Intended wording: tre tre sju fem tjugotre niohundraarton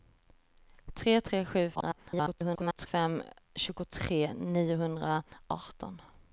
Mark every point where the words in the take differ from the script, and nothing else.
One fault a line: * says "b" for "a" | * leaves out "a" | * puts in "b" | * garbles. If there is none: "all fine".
* garbles